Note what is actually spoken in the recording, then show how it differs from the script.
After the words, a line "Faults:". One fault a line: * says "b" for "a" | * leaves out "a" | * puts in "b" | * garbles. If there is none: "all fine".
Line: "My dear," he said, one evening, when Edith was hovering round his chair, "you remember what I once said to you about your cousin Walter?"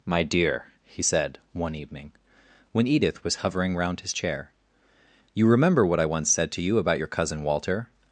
"My dear," he said, one evening, when Edith was hovering round his chair, "you remember what I once said to you about your cousin Walter?"
Faults:
all fine